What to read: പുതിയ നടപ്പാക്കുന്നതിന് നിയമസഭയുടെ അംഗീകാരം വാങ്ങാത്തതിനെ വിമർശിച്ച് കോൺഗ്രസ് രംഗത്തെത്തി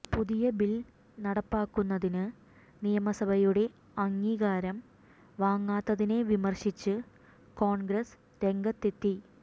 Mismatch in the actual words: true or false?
true